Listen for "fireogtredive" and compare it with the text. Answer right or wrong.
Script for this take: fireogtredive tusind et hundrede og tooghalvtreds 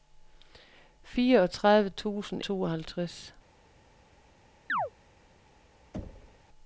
right